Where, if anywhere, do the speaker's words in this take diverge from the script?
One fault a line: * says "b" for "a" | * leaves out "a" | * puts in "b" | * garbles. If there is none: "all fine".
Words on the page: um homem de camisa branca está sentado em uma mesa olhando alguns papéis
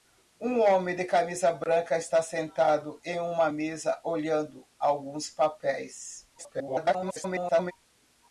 * garbles